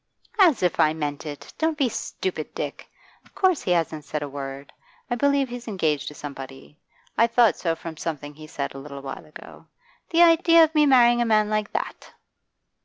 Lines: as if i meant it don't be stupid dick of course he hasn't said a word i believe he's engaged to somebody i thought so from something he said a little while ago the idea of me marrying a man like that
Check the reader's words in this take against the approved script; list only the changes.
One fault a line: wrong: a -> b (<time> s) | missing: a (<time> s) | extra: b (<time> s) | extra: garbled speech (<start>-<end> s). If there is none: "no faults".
no faults